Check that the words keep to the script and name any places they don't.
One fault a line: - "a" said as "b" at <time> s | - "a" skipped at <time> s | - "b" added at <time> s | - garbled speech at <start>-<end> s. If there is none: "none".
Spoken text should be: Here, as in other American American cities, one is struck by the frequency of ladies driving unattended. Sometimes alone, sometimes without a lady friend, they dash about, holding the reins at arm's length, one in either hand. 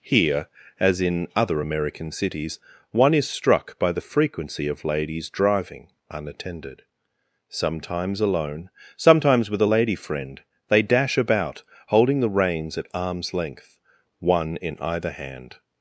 - "American" skipped at 2.1 s
- "without" said as "with" at 9.5 s